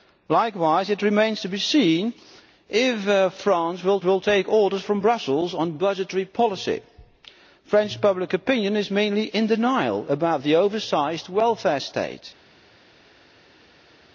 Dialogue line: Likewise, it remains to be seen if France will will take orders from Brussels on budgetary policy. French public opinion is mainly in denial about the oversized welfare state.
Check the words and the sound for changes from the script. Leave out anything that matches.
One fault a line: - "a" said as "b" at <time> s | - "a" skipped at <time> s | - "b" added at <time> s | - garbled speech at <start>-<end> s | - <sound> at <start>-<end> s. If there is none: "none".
none